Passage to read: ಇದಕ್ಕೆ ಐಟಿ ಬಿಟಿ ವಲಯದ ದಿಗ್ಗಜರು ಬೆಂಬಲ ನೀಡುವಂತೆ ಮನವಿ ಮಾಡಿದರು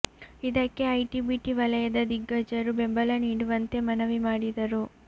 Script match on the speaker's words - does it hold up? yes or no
yes